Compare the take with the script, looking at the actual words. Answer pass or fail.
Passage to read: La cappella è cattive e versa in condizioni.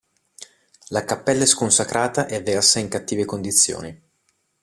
fail